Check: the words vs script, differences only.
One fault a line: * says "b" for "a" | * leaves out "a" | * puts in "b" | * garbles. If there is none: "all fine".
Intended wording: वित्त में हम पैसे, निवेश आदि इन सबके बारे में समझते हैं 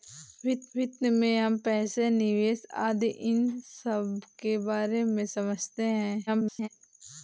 * puts in "वित्त"
* garbles